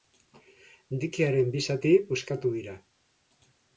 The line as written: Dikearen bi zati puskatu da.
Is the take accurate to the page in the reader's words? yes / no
no